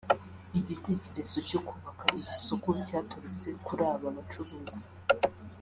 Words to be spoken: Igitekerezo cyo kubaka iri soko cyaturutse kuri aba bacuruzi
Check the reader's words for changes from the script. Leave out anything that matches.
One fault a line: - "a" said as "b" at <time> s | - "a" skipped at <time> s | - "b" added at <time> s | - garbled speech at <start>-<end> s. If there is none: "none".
none